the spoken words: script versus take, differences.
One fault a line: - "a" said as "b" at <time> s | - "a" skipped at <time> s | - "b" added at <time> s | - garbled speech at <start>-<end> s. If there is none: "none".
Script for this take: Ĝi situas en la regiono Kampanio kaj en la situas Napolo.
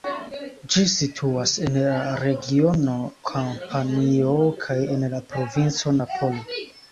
- "situas" said as "provinco" at 5.3 s